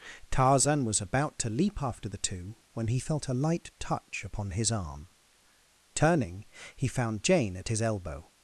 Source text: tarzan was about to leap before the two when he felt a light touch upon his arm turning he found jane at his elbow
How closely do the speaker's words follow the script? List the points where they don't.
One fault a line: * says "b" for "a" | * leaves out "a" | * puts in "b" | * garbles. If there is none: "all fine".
* says "after" for "before"